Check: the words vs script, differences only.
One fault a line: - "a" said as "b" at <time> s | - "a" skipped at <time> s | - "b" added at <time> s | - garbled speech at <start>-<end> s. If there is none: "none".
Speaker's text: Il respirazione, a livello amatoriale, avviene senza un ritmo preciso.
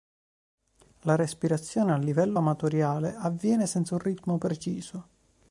- "Il" said as "La" at 1.0 s